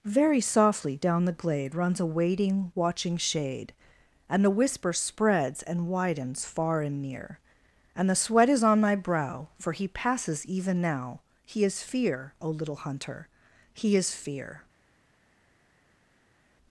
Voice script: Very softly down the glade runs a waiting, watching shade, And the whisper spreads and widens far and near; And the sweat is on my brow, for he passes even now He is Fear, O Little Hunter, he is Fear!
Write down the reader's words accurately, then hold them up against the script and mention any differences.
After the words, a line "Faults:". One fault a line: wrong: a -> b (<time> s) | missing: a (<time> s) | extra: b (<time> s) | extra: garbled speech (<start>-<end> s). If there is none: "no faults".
Very softly down the glade runs a waiting, watching shade, And the whisper spreads and widens far and near; And the sweat is on my brow, for he passes even now He is Fear, O Little Hunter, he is Fear!
Faults:
no faults